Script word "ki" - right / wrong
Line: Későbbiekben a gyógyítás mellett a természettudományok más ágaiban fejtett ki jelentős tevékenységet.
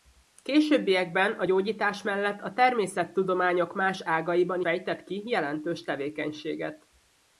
right